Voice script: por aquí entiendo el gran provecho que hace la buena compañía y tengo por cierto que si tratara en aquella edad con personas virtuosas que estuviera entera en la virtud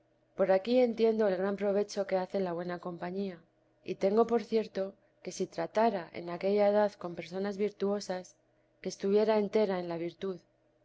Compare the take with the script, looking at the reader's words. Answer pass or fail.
pass